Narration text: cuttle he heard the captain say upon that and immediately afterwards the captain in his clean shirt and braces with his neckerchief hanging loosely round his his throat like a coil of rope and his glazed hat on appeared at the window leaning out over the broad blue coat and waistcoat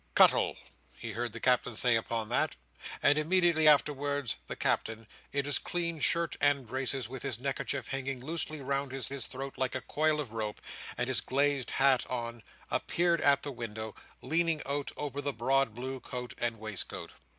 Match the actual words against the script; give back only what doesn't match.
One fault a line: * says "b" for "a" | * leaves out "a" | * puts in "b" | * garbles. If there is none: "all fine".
all fine